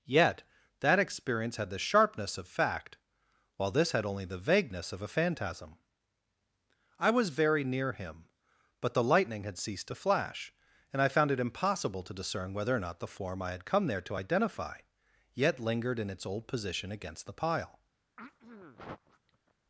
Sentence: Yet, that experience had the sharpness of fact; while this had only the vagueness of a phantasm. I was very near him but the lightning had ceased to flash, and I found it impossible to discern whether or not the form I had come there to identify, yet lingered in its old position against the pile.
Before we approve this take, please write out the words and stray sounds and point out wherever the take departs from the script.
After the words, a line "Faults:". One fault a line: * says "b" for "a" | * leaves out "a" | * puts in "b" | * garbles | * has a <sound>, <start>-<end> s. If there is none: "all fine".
Yet, that experience had the sharpness of fact; while this had only the vagueness of a phantasm. I was very near him but the lightning had ceased to flash, and I found it impossible to discern whether or not the form I had come there to identify, yet lingered in its old position against the pile.
Faults:
* has a throat clearing, 18.2-19.5 s